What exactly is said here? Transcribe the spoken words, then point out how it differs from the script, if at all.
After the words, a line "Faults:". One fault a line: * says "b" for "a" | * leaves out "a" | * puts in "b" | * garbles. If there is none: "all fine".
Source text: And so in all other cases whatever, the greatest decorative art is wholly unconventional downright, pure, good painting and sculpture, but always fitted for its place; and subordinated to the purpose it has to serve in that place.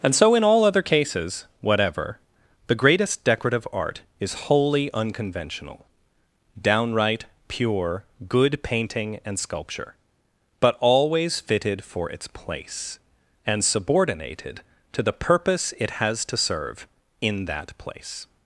And so in all other cases whatever, the greatest decorative art is wholly unconventional downright, pure, good painting and sculpture, but always fitted for its place; and subordinated to the purpose it has to serve in that place.
Faults:
all fine